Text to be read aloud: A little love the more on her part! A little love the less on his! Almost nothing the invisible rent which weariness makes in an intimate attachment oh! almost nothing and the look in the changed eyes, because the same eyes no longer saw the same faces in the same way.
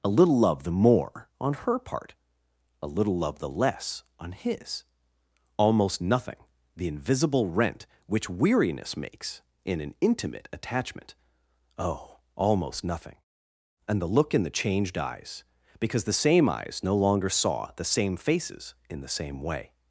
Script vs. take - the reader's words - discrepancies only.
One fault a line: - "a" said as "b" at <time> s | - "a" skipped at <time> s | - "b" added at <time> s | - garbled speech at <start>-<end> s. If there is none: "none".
none